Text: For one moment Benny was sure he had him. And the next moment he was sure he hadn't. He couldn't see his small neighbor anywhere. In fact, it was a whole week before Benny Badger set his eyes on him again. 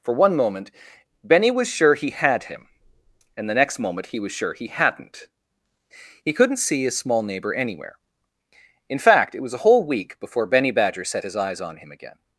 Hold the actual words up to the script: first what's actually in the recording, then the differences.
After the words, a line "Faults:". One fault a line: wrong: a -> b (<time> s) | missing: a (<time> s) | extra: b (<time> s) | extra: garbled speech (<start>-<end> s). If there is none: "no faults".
For one moment Benny was sure he had him. And the next moment he was sure he hadn't. He couldn't see his small neighbor anywhere. In fact, it was a whole week before Benny Badger set his eyes on him again.
Faults:
no faults